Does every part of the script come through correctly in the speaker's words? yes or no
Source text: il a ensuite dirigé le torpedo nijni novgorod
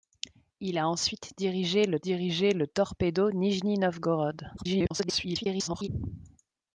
no